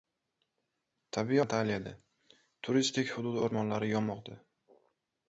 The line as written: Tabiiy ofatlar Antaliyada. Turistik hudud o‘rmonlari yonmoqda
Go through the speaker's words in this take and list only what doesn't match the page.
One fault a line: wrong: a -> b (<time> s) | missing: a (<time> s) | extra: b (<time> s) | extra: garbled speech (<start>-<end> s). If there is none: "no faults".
missing: ofatlar (1.4 s)